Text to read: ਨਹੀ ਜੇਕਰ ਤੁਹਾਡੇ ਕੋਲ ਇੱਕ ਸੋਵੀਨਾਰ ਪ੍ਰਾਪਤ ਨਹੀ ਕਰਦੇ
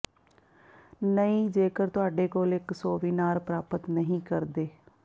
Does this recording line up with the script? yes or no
yes